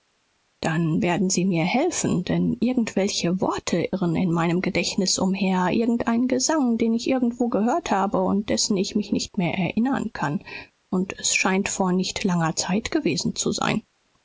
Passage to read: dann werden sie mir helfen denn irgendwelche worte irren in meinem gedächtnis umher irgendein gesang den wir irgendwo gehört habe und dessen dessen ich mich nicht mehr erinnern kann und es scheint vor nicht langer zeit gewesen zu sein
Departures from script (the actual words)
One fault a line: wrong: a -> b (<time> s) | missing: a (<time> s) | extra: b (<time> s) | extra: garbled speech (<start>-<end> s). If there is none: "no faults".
wrong: wir -> ich (7.0 s)
missing: dessen (8.8 s)